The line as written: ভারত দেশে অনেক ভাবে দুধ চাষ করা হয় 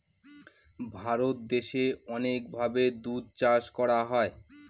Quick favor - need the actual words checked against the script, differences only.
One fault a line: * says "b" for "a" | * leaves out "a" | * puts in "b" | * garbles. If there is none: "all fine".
all fine